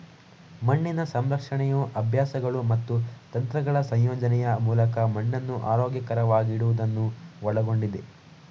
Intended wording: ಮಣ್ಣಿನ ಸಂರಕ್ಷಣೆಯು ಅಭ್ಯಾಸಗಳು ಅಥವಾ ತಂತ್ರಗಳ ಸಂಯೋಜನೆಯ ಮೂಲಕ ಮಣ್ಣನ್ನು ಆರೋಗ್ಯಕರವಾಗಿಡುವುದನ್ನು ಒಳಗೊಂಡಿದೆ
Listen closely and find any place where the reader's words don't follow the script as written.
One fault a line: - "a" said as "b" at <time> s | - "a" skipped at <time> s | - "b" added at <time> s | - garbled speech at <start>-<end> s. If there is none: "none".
- "ಅಥವಾ" said as "ಮತ್ತು" at 2.7 s